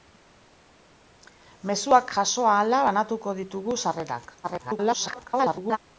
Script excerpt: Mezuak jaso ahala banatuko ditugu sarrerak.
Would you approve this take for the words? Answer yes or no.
no